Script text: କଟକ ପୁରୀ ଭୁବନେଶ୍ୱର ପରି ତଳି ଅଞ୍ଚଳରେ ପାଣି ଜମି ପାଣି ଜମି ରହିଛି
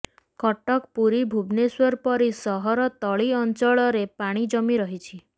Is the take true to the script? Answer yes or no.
no